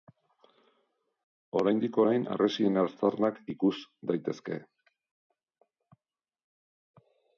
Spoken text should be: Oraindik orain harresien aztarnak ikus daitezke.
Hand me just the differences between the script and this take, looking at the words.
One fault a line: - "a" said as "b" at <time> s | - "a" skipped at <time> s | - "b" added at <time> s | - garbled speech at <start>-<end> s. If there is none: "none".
none